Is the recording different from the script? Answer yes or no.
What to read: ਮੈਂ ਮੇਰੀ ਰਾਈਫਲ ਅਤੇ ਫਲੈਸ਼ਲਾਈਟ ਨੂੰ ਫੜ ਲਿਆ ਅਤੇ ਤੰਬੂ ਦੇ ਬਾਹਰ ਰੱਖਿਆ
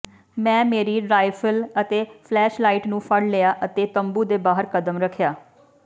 yes